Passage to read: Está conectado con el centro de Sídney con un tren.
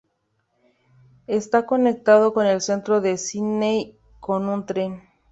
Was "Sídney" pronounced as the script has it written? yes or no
yes